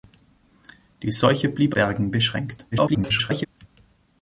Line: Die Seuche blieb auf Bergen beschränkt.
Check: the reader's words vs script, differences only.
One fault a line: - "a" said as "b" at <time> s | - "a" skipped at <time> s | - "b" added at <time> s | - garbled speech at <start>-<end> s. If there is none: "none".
- "auf" skipped at 1.8 s
- garbled speech at 2.7-3.5 s